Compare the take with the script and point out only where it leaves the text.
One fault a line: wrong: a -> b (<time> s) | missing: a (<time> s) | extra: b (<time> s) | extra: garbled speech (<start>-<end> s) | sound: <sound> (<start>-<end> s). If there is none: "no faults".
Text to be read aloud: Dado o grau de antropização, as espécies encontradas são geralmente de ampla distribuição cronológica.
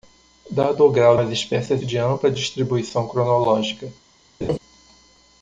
missing: de antropização (1.2 s)
missing: encontradas são geralmente (1.8 s)
sound: laugh (4.4-4.6 s)